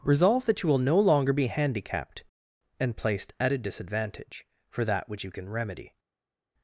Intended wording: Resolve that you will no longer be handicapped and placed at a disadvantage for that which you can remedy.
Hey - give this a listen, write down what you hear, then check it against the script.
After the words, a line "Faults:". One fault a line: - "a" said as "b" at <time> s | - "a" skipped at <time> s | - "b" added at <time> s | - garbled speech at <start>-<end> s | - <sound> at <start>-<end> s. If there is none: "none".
Resolve that you will no longer be handicapped and placed at a disadvantage for that which you can remedy.
Faults:
none